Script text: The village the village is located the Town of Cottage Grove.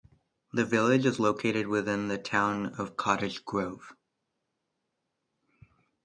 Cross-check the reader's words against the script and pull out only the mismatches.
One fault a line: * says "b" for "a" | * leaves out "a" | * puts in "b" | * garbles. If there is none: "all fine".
* leaves out "the village"
* puts in "within"